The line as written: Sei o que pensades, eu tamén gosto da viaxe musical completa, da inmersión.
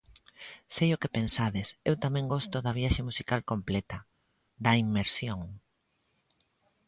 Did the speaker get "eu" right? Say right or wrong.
right